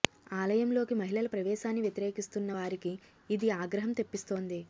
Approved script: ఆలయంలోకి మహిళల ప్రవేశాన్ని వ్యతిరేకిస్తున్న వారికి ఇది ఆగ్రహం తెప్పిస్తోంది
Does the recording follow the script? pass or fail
pass